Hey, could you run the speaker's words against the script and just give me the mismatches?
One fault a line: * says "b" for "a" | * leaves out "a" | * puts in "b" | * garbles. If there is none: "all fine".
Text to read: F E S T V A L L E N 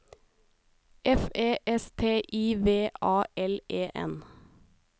* puts in "I"
* leaves out "L"